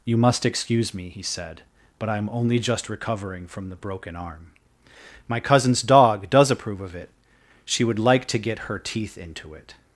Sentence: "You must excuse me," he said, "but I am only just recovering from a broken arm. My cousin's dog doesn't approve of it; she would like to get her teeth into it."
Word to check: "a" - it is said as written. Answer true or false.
false